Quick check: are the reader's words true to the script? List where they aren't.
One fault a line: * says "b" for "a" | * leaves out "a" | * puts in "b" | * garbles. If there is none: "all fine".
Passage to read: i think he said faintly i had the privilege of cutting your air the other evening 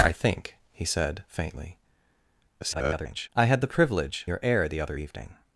* garbles
* leaves out "of cutting"